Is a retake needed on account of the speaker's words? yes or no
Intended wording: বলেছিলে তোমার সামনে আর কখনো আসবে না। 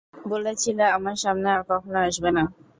yes